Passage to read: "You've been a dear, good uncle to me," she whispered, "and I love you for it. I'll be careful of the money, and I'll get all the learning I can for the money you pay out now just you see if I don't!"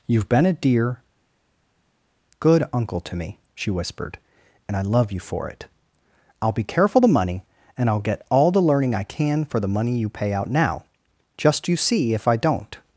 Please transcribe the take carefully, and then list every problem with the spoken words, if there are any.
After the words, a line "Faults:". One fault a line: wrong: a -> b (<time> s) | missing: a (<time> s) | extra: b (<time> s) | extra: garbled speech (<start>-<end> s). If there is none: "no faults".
"You've been a dear, good uncle to me," she whispered, "and I love you for it. I'll be careful the money, and I'll get all the learning I can for the money you pay out now just you see if I don't!"
Faults:
missing: of (7.0 s)